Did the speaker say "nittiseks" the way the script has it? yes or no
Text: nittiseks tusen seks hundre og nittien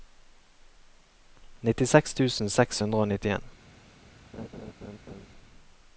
yes